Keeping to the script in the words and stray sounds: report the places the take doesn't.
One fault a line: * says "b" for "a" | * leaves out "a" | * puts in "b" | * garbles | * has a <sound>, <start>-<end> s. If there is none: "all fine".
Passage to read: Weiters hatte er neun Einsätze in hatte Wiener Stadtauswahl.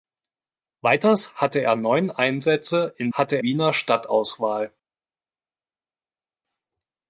all fine